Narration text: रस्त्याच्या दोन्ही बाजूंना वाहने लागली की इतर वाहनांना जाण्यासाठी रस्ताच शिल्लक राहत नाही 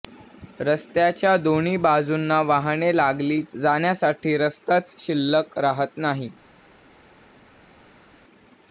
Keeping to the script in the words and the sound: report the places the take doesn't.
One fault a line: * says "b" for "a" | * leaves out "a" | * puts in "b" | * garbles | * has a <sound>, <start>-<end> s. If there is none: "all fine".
* leaves out "की इतर वाहनांना"